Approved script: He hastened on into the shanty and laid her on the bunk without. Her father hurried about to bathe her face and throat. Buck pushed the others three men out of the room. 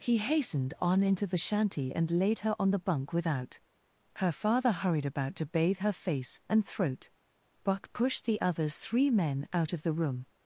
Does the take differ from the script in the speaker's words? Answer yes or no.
no